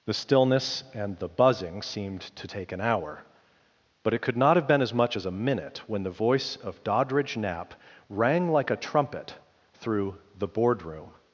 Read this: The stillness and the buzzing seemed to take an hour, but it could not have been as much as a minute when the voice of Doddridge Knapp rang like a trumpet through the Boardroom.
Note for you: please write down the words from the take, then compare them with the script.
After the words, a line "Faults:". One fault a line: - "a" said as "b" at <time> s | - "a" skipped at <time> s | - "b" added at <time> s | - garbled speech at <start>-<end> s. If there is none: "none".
The stillness and the buzzing seemed to take an hour, but it could not have been as much as a minute when the voice of Doddridge Knapp rang like a trumpet through the Boardroom.
Faults:
none